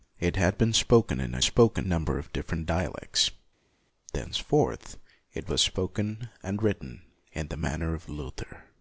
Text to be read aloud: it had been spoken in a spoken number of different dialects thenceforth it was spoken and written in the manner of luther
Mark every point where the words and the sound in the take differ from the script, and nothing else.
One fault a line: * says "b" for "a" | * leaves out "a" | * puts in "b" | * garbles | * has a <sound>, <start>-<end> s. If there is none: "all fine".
all fine